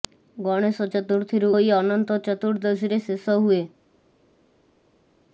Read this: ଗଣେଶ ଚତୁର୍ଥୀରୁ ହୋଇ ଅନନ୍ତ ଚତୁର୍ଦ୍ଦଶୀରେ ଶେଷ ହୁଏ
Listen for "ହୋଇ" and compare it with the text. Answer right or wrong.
right